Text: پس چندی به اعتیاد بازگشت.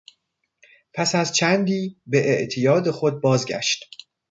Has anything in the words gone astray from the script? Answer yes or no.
yes